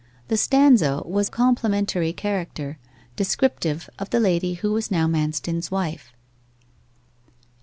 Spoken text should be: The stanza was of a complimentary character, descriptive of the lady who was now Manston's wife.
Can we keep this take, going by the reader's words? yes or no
no